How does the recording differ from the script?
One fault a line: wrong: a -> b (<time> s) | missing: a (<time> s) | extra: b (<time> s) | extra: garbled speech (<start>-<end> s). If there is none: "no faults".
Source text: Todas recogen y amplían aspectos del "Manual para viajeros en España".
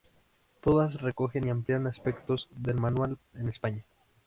missing: para viajeros (3.2 s)